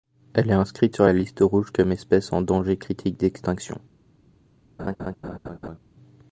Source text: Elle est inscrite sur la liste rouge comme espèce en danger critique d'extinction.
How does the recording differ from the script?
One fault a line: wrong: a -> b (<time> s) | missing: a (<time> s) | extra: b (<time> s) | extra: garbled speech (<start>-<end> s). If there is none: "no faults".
no faults